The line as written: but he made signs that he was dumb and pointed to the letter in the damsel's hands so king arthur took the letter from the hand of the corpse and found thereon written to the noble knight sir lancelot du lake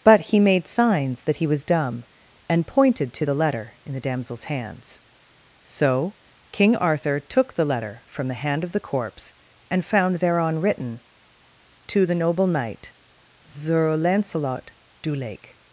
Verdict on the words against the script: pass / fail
pass